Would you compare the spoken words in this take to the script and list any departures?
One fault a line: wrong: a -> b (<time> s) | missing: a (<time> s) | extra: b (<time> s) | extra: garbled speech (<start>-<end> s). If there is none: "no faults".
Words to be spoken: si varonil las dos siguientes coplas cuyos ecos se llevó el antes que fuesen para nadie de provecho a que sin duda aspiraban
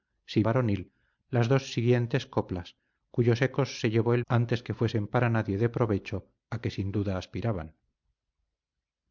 no faults